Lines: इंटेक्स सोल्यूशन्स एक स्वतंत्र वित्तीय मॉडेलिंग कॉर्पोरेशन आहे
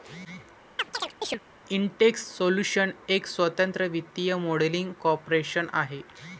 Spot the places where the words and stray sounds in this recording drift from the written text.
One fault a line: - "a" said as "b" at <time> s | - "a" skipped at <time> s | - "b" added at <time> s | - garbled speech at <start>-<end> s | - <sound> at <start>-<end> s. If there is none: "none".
- chirp at 0.8-1.4 s